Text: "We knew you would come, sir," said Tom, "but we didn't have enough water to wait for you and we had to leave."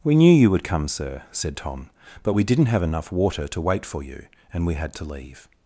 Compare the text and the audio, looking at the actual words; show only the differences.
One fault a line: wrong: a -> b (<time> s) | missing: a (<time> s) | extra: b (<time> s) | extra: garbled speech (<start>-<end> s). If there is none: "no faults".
no faults